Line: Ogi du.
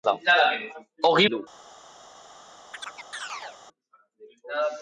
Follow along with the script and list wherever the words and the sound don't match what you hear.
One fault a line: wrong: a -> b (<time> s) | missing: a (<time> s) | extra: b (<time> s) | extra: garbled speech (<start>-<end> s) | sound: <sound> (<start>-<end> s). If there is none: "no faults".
sound: chirp (2.7-3.6 s)